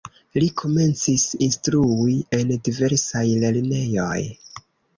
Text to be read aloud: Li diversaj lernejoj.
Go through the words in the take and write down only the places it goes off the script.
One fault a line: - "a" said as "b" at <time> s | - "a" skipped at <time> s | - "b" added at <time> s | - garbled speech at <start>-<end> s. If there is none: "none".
- "komencis instrui en" added at 0.6 s